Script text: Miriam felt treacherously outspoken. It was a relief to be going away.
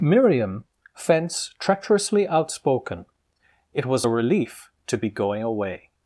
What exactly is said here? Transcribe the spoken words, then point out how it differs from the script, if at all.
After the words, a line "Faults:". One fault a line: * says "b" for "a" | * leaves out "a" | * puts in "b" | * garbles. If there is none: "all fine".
Miriam fence treacherously outspoken. It was a relief to be going away.
Faults:
* says "fence" for "felt"